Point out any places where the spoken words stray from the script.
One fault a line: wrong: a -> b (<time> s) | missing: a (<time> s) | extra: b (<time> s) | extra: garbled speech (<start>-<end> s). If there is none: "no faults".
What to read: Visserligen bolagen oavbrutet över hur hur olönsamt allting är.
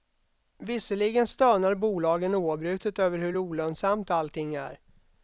extra: stönar (1.3 s)
missing: hur (3.4 s)